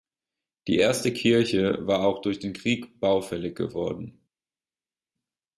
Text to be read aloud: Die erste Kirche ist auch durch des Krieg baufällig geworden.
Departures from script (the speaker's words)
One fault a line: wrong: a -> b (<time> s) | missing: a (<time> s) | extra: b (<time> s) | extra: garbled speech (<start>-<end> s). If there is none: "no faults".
wrong: ist -> war (1.9 s)
wrong: des -> den (2.4 s)